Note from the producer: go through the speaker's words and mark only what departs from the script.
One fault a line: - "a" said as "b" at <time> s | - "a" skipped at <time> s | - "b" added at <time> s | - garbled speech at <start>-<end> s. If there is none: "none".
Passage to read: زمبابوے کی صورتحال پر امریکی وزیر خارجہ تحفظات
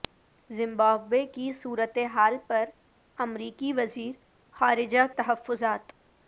none